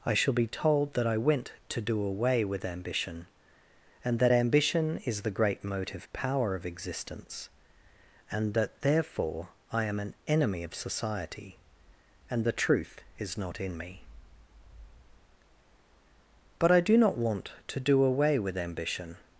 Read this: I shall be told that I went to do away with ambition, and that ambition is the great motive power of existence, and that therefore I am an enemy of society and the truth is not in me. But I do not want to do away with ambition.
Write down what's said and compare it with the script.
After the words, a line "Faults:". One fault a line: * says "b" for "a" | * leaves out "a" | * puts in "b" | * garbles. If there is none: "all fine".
I shall be told that I went to do away with ambition, and that ambition is the great motive power of existence, and that therefore I am an enemy of society and the truth is not in me. But I do not want to do away with ambition.
Faults:
all fine